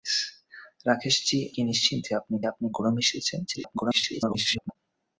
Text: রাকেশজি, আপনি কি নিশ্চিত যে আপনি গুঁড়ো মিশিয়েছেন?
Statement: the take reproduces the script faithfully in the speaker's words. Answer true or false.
false